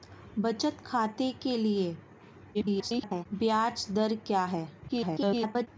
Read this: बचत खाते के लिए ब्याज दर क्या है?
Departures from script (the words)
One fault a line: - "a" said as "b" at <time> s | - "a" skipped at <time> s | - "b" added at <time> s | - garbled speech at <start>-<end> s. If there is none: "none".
- garbled speech at 2.5-3.3 s
- garbled speech at 4.9-5.7 s